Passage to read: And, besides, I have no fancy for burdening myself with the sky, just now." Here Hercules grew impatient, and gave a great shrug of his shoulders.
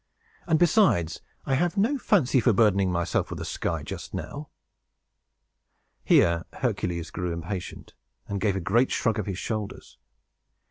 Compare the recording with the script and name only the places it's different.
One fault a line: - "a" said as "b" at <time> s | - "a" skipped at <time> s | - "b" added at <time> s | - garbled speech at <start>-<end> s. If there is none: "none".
none